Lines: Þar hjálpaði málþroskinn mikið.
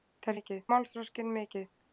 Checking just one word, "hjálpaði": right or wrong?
wrong